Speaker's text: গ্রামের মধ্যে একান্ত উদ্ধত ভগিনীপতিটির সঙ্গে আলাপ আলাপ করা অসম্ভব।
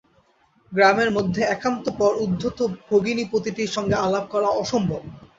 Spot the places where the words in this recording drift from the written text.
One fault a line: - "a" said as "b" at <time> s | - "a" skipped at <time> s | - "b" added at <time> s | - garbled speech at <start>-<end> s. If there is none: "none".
- "পর" added at 2.0 s
- "আলাপ" skipped at 4.3 s